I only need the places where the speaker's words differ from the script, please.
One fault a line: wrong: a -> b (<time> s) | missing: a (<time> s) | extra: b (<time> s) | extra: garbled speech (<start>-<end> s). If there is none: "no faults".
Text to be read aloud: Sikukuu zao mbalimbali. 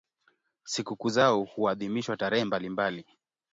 extra: huadhimishwa tarehe (1.4 s)